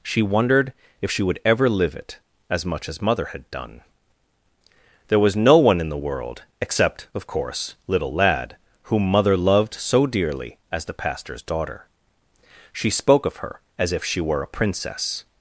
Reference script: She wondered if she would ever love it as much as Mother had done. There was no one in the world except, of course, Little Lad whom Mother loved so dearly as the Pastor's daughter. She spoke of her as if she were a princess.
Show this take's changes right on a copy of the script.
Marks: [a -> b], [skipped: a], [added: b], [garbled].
She wondered if she would ever [love -> live] it as much as Mother had done. There was no one in the world except, of course, Little Lad whom Mother loved so dearly as the Pastor's daughter. She spoke of her as if she were a princess.